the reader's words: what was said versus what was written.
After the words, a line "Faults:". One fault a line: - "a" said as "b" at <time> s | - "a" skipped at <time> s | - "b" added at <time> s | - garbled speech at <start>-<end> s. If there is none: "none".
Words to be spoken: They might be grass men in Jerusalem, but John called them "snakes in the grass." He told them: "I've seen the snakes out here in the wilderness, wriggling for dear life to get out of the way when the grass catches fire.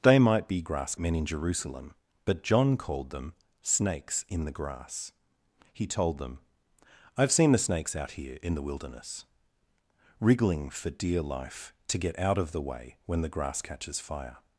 They might be grass men in Jerusalem, but John called them "snakes in the grass." He told them: "I've seen the snakes out here in the wilderness, wriggling for dear life to get out of the way when the grass catches fire.
Faults:
none